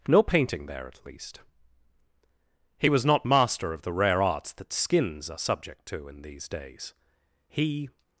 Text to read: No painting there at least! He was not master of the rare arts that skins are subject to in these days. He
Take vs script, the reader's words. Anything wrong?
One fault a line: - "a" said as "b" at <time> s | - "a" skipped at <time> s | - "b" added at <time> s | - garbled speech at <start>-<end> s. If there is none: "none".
none